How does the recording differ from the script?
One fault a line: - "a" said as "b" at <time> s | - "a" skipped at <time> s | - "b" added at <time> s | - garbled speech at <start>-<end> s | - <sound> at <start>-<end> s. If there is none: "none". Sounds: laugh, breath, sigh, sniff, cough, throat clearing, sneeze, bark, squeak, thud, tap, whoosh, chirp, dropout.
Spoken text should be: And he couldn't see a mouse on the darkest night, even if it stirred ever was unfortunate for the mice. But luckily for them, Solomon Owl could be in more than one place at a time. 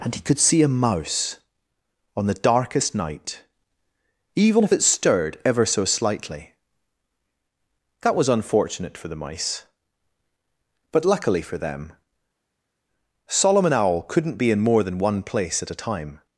- "couldn't" said as "could" at 0.2 s
- "so slightly That" added at 5.6 s
- "could" said as "couldn't" at 14.0 s